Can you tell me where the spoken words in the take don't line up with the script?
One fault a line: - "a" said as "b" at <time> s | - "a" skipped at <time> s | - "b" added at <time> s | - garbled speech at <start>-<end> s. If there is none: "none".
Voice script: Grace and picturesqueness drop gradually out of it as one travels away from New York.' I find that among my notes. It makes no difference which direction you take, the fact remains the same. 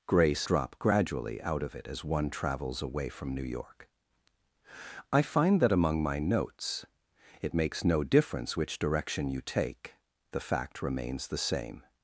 - "and picturesqueness" skipped at 0.5 s